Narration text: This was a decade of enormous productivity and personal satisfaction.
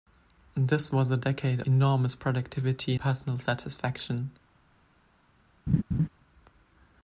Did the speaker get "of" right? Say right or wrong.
wrong